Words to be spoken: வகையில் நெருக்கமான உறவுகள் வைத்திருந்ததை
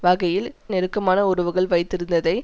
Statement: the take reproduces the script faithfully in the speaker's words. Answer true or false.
true